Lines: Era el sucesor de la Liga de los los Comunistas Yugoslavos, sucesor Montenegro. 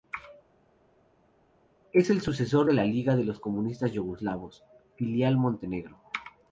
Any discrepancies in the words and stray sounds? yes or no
yes